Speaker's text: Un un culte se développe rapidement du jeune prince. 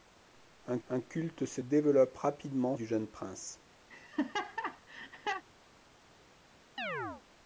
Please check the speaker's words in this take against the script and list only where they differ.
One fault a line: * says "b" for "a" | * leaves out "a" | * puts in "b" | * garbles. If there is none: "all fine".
all fine